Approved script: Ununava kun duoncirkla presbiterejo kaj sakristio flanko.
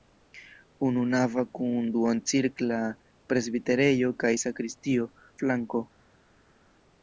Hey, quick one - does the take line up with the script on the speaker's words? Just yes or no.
yes